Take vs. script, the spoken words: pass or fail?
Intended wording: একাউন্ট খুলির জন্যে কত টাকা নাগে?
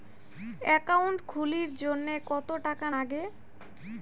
pass